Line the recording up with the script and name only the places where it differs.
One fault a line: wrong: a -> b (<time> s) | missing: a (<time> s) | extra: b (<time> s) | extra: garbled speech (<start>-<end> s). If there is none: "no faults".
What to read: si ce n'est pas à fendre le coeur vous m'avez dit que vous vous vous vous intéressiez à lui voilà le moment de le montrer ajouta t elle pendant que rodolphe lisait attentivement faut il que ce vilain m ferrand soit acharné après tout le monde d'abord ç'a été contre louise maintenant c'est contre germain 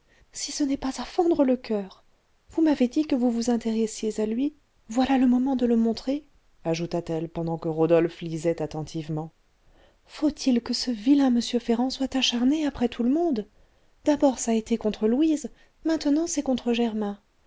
missing: vous vous (3.5 s)